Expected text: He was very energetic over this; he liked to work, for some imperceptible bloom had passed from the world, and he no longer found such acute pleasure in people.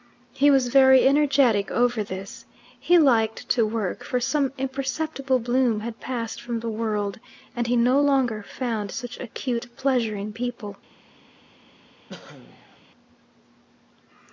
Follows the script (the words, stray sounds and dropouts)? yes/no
no